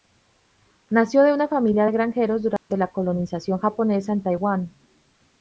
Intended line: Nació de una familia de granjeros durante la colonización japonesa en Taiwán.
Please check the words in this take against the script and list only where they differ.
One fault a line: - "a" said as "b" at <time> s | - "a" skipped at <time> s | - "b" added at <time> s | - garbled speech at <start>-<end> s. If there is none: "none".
none